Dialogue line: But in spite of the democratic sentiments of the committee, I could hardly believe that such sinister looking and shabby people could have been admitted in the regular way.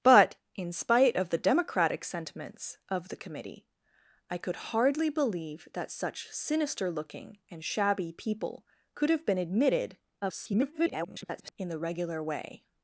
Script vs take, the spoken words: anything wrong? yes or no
yes